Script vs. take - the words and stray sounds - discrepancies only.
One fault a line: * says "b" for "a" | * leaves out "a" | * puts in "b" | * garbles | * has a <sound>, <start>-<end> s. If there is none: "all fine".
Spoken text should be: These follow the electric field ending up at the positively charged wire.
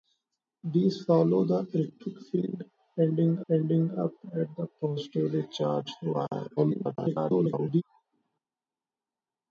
* puts in "ending"
* garbles